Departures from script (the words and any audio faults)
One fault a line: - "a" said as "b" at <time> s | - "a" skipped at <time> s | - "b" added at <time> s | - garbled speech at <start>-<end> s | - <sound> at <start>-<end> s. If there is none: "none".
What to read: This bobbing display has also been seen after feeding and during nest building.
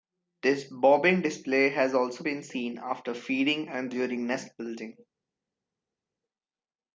none